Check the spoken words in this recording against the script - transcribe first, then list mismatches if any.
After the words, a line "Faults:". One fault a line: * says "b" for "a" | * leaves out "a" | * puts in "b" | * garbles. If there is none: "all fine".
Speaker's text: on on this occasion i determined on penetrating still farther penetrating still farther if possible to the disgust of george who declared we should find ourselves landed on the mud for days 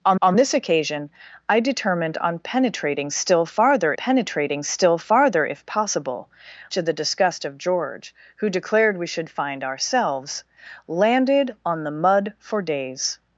on on this occasion i determined on penetrating still farther penetrating still farther if possible to the disgust of george who declared we should find ourselves landed on the mud for days
Faults:
all fine